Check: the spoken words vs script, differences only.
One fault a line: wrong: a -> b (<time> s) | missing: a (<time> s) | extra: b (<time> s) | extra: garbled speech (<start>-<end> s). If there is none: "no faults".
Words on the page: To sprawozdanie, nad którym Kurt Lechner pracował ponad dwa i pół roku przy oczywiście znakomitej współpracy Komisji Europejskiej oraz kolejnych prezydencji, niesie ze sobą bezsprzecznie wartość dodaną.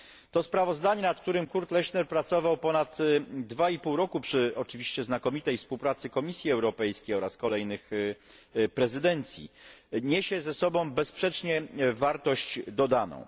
no faults